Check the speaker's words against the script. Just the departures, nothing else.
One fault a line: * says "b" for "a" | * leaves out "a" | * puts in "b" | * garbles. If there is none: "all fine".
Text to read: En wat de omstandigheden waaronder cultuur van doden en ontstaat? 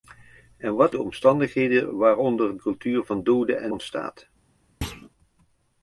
all fine